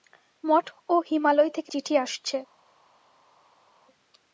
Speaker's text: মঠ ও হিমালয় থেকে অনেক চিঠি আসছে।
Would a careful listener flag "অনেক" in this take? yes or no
yes